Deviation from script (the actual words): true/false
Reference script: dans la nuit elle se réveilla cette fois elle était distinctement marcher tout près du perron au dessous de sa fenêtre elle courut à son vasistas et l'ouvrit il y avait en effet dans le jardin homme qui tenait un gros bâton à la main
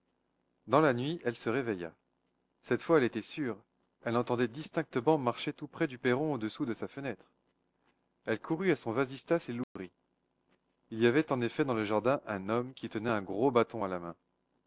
true